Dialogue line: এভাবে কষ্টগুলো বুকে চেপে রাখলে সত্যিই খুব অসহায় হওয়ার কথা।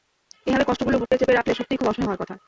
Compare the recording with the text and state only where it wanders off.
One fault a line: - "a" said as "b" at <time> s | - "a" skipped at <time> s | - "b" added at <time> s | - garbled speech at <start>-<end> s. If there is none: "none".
none